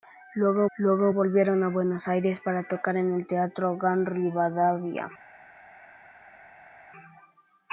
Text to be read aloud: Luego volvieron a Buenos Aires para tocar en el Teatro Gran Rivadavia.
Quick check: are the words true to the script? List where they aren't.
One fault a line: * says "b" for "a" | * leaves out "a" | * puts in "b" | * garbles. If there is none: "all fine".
* puts in "luego"